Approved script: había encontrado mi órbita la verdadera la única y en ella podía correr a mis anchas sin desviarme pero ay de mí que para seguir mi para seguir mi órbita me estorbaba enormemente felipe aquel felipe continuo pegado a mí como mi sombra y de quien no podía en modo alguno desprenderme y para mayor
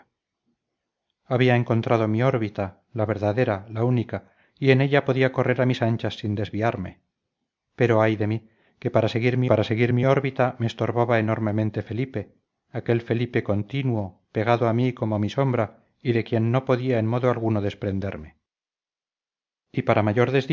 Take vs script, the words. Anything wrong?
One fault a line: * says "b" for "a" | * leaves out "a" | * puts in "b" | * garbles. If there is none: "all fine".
all fine